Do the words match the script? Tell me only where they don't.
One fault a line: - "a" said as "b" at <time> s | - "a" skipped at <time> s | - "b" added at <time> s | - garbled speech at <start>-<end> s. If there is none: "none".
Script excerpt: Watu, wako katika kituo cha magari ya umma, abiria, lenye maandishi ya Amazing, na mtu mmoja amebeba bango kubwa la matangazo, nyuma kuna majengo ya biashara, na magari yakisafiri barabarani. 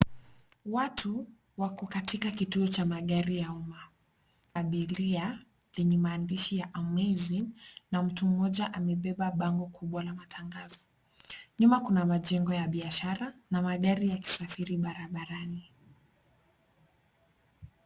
none